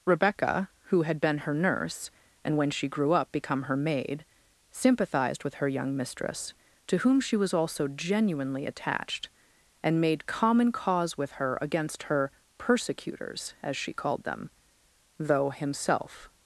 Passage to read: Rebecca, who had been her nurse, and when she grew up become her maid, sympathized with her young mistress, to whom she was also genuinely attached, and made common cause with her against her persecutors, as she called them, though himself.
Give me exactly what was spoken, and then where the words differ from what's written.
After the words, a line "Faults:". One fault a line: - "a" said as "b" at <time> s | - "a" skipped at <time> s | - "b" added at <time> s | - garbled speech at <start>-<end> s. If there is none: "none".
Rebecca, who had been her nurse, and when she grew up become her maid, sympathized with her young mistress, to whom she was also genuinely attached, and made common cause with her against her persecutors, as she called them, though himself.
Faults:
none